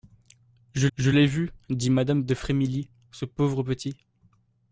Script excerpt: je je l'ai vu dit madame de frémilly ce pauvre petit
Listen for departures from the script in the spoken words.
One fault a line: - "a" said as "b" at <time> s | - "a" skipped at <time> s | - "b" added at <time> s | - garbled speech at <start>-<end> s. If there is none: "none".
none